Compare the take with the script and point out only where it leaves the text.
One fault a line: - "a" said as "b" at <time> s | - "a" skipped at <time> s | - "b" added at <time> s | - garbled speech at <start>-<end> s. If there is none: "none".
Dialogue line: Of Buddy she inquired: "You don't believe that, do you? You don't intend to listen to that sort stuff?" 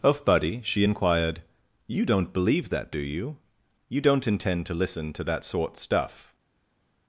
none